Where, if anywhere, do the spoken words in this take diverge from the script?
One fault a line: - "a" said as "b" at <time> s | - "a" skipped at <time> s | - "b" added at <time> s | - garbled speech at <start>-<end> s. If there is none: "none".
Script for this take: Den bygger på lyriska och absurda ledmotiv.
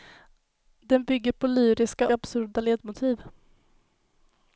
- "och" skipped at 2.1 s